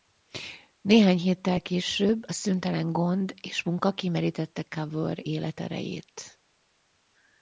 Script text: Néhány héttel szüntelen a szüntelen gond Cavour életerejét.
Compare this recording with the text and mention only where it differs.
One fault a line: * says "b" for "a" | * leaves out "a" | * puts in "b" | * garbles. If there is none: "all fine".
* says "később" for "szüntelen"
* puts in "és munka kimerítette"